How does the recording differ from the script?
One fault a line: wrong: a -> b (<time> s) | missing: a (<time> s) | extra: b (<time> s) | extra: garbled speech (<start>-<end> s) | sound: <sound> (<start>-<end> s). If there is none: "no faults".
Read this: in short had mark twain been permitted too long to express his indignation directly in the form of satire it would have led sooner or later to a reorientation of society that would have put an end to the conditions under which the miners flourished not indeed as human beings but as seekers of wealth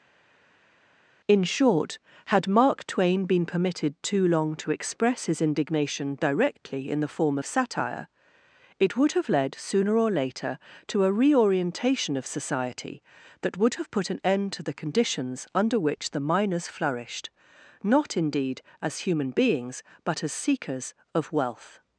no faults